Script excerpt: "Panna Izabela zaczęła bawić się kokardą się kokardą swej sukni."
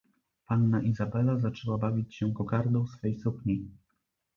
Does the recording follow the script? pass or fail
fail